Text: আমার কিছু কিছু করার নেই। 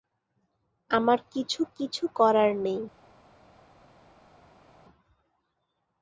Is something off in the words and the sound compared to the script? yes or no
no